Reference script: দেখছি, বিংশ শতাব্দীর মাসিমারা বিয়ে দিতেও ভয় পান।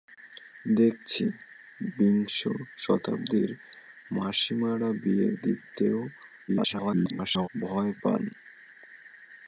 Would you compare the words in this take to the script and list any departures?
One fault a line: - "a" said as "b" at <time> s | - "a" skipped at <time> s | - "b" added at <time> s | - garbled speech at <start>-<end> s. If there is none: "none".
- garbled speech at 6.5-7.5 s